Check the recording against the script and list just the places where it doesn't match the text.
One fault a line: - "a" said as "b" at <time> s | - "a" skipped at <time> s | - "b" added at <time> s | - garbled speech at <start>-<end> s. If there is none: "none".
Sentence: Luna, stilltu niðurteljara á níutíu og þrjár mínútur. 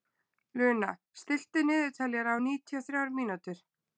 none